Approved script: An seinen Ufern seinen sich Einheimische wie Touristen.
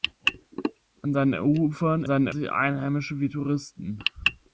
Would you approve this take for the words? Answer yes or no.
yes